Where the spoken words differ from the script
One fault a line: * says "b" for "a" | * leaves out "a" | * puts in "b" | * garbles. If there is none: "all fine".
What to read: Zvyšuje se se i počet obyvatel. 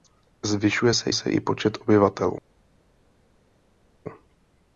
all fine